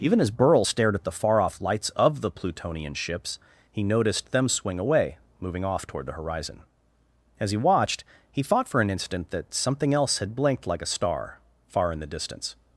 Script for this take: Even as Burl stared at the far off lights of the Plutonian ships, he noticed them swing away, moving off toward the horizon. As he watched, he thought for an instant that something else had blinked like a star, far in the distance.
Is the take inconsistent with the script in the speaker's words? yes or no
no